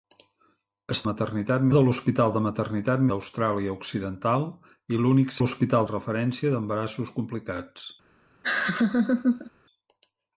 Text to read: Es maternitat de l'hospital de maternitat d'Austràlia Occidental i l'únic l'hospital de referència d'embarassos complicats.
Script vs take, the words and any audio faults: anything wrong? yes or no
yes